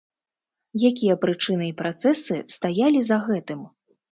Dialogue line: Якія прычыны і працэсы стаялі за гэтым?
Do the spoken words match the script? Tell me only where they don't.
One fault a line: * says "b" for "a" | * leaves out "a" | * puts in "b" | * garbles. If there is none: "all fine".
all fine